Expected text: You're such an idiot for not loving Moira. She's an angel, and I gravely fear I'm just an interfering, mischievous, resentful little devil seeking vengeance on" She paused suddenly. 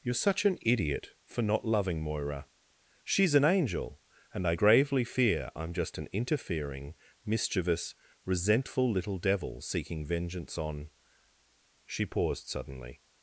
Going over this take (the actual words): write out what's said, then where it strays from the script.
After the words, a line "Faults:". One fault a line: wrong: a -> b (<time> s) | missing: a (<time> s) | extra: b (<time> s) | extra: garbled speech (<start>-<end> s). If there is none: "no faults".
You're such an idiot for not loving Moira. She's an angel, and I gravely fear I'm just an interfering, mischievous, resentful little devil seeking vengeance on" She paused suddenly.
Faults:
no faults